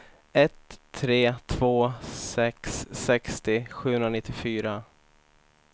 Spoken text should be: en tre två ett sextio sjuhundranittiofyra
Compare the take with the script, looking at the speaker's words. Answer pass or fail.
fail